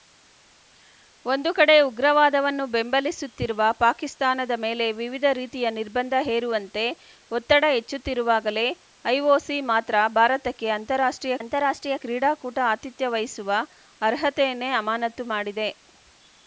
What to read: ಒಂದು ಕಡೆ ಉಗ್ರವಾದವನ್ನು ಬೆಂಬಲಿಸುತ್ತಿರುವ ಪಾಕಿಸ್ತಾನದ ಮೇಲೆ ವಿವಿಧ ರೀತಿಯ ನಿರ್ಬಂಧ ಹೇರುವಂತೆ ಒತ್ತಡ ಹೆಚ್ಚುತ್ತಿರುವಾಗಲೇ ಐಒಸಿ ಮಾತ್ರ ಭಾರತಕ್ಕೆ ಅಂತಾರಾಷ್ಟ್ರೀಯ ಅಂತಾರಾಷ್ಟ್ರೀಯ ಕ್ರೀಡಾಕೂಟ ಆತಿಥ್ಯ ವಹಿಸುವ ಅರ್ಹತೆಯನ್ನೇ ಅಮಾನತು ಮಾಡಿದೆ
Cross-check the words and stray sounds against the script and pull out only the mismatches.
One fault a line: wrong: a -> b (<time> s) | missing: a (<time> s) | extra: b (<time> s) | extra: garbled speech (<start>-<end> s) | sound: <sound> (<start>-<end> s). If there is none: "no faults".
no faults